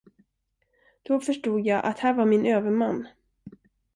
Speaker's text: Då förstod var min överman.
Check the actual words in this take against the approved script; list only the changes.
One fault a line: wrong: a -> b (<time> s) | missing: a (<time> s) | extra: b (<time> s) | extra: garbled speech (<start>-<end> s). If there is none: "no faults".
extra: jag att här (1.6 s)